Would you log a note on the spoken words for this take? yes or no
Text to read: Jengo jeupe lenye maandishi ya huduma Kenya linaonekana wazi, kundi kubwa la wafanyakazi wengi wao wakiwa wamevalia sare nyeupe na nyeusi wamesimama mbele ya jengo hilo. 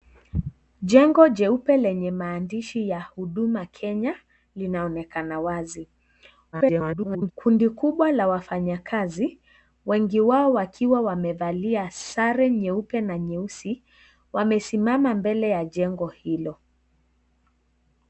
yes